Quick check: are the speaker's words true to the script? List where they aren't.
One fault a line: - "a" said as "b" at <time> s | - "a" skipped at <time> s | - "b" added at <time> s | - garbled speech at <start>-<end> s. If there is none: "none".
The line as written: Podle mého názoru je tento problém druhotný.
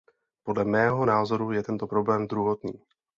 none